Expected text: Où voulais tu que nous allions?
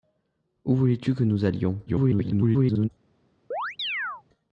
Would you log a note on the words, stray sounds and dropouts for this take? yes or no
yes